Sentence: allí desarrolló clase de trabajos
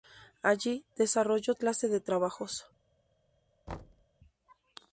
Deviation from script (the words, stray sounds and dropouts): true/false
true